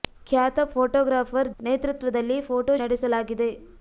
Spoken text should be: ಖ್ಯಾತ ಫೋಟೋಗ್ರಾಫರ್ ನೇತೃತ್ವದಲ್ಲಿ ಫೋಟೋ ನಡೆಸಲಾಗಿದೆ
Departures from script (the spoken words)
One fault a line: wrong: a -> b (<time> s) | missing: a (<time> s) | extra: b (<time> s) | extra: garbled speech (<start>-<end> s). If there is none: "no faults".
no faults